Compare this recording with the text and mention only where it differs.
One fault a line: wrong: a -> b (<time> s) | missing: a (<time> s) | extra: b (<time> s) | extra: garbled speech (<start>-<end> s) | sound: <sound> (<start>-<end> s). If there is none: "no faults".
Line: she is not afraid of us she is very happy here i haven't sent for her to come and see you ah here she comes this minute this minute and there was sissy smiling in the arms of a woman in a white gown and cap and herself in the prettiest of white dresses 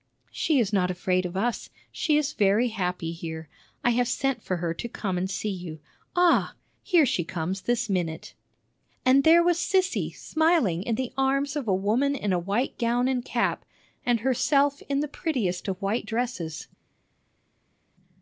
wrong: haven't -> have (3.9 s)
missing: this minute (8.3 s)